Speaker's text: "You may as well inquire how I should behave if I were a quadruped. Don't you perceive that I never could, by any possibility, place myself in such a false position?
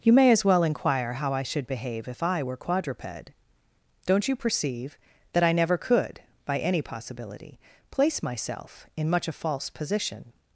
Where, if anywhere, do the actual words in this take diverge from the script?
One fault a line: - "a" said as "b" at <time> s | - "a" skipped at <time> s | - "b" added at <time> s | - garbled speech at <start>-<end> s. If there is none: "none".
- "a" skipped at 2.6 s
- "such" said as "much" at 9.1 s